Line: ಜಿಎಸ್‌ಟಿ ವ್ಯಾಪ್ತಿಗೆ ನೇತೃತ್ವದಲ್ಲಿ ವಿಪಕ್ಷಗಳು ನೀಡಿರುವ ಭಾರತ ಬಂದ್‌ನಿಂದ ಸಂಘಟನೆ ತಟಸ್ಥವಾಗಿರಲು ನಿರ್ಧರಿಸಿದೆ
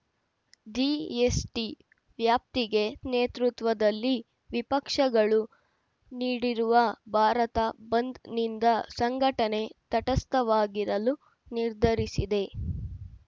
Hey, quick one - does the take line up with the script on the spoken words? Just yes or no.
yes